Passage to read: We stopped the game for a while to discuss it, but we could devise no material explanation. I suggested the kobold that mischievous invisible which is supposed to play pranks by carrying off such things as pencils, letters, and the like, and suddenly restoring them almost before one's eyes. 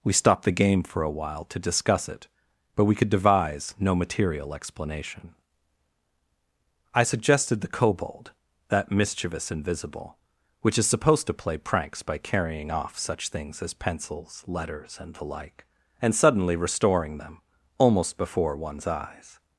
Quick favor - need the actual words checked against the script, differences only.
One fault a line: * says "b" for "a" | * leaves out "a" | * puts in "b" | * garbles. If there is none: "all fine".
all fine